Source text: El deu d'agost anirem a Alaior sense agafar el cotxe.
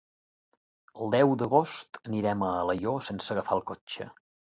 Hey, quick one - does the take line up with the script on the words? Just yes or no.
yes